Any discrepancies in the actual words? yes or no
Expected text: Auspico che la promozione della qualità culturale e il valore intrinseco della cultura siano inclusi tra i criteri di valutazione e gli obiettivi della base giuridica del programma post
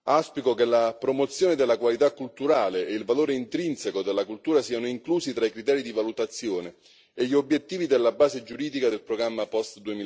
no